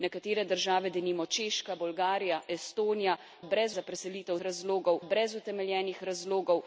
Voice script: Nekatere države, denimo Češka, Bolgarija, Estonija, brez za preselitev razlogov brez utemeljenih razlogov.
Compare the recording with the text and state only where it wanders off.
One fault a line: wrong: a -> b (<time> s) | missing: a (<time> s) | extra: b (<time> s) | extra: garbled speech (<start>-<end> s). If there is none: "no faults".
no faults